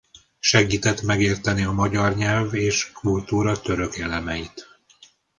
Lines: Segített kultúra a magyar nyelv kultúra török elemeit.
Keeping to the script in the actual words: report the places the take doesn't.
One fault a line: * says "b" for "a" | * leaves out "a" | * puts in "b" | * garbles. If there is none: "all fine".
* says "megérteni" for "kultúra"
* puts in "és"